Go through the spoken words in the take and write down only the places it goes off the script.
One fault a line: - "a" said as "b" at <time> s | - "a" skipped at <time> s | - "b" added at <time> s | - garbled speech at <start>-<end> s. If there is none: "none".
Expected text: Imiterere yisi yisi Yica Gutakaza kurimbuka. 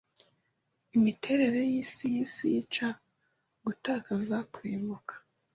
none